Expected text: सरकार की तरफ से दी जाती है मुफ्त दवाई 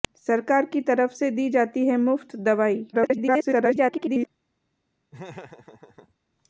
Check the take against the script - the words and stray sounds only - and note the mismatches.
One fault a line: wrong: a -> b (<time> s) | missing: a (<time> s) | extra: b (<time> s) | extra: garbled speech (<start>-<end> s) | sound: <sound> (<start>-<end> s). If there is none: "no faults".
extra: garbled speech (2.9-4.3 s)
sound: laugh (5.1-6.1 s)